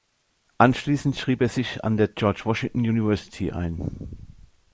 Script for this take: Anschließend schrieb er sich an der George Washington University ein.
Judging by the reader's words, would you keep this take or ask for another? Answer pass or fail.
pass